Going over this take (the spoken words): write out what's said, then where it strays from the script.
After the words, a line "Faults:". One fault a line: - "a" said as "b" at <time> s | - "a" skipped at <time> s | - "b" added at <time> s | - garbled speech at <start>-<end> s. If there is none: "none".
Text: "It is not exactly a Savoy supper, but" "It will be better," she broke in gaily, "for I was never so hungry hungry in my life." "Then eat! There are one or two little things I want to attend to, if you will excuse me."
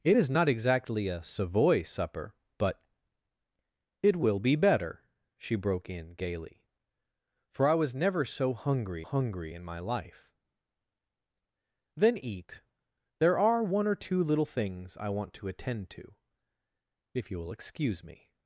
"It is not exactly a Savoy supper, but" "It will be better," she broke in gaily, "for I was never so hungry hungry in my life." "Then eat! There are one or two little things I want to attend to, if you will excuse me."
Faults:
none